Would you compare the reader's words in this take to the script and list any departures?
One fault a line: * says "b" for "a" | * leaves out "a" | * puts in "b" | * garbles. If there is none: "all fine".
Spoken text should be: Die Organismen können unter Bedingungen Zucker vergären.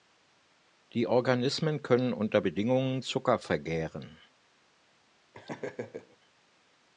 all fine